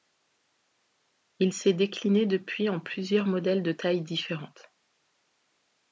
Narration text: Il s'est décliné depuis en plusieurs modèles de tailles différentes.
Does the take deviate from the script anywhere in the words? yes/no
no